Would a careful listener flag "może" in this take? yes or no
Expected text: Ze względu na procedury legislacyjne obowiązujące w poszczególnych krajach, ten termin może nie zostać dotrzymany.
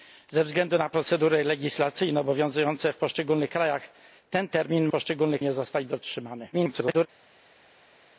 yes